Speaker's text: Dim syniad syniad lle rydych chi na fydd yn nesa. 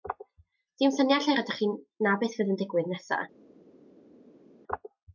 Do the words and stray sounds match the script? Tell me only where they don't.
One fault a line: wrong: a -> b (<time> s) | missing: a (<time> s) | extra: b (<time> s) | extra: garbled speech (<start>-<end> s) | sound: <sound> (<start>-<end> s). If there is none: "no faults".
missing: syniad (1.3 s)
extra: beth (2.3 s)
extra: digwydd (2.6 s)